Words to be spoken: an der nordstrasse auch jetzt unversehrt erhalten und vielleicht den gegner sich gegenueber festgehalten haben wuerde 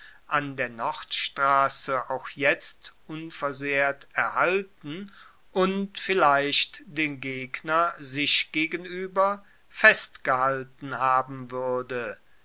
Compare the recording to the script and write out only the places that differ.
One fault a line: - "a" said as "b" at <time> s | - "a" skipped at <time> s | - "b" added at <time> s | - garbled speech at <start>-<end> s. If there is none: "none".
none